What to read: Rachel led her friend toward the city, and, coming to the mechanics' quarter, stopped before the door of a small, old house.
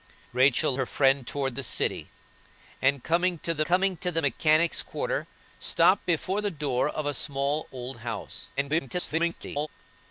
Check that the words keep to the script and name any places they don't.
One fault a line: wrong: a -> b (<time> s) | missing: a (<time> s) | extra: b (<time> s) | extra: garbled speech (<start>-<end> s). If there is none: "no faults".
missing: led (0.7 s)
extra: coming to the (3.6 s)
extra: garbled speech (8.6-9.7 s)